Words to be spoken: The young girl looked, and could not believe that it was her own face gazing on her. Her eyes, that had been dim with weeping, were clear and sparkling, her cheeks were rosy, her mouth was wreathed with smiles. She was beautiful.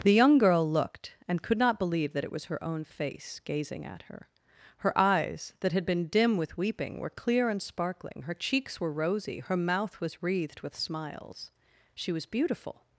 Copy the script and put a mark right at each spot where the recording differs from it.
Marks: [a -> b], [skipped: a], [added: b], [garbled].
The young girl looked, and could not believe that it was her own face gazing [on -> at] her. Her eyes, that had been dim with weeping, were clear and sparkling, her cheeks were rosy, her mouth was wreathed with smiles. She was beautiful.